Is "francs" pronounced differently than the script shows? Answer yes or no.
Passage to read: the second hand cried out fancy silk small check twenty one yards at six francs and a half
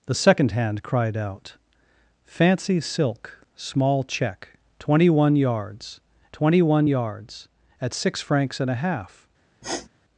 no